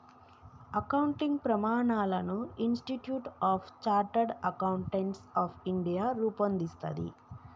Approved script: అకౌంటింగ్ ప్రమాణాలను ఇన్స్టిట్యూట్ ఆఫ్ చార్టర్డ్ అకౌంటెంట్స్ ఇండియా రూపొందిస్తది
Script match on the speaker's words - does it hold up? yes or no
no